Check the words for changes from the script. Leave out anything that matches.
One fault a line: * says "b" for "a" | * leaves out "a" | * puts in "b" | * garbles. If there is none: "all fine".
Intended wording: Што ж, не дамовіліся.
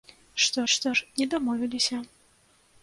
* puts in "што"